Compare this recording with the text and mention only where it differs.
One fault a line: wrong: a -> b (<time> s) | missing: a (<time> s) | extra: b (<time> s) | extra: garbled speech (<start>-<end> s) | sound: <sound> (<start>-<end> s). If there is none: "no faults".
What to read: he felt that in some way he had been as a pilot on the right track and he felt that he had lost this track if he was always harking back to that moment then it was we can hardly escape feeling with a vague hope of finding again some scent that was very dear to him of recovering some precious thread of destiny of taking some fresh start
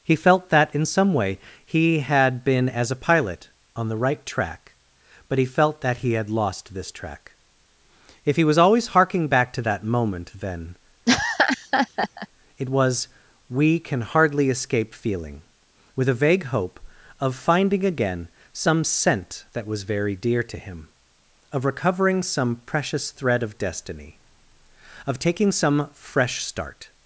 wrong: and -> but (5.3 s)
sound: laugh (11.1-12.3 s)